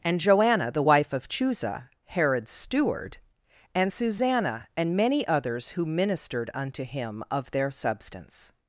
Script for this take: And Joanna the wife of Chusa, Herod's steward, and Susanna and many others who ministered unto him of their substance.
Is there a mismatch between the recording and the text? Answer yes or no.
no